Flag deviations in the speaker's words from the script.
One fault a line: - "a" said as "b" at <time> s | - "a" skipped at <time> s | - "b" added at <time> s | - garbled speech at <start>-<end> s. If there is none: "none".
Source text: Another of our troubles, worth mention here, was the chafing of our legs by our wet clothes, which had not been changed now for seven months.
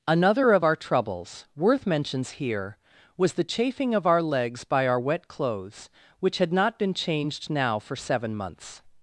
- "mention" said as "mentions" at 1.8 s